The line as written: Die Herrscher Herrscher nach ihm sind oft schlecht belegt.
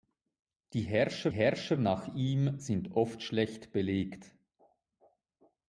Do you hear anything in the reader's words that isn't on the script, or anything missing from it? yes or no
no